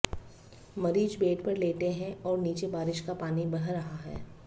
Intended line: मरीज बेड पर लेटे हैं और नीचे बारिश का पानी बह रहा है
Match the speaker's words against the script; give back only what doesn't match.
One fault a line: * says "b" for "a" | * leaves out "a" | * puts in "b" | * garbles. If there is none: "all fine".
all fine